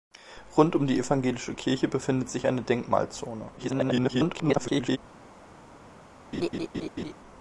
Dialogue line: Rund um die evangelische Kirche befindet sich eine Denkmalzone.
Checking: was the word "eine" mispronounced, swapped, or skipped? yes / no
no